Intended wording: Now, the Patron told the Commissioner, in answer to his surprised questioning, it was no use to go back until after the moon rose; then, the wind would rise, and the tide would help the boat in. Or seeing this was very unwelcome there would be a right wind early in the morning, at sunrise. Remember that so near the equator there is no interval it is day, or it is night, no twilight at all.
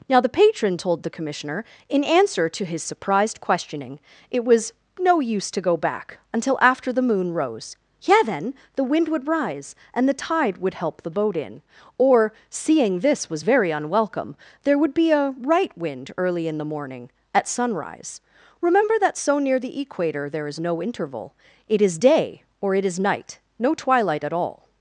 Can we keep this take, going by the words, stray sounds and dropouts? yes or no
no